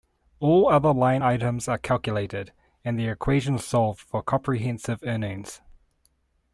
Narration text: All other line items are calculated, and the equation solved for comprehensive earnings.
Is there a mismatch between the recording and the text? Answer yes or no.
no